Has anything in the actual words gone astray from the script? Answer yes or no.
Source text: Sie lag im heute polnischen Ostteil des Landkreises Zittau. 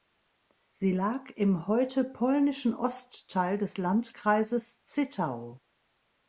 no